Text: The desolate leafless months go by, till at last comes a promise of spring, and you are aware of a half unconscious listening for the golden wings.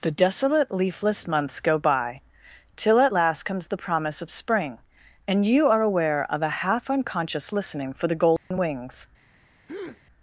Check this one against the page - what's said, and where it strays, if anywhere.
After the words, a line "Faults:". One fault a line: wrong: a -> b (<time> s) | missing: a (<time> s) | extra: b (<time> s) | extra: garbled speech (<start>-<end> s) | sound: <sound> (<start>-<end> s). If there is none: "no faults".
The desolate leafless months go by, till at last comes the promise of spring, and you are aware of a half unconscious listening for the golden wings.
Faults:
wrong: a -> the (3.7 s)
sound: dropout (8.4-8.5 s)
sound: breath (9.7-10.0 s)